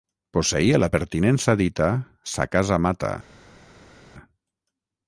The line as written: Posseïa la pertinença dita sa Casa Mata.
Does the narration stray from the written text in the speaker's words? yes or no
no